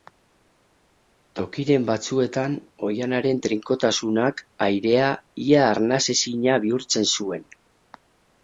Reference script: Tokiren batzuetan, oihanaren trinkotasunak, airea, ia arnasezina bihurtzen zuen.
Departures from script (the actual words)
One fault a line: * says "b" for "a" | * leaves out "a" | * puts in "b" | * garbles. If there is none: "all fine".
all fine